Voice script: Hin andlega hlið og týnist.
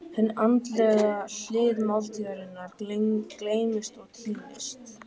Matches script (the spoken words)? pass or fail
fail